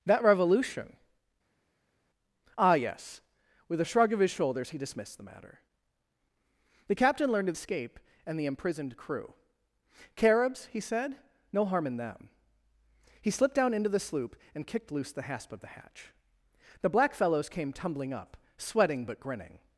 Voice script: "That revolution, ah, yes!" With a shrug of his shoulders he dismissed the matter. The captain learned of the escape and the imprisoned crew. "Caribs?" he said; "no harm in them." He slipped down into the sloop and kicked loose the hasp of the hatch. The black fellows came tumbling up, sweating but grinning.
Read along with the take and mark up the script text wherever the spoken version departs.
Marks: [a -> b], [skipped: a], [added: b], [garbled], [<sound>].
"That revolution, ah, yes!" With a shrug of his shoulders he dismissed the matter. The captain learned of [skipped: the] escape and the imprisoned crew. "Caribs?" he said; "no harm in them." He slipped down into the sloop and kicked loose the hasp of the hatch. The black fellows came tumbling up, sweating but grinning.